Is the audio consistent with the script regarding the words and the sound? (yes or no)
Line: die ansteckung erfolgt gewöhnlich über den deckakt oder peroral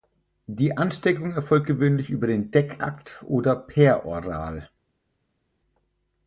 yes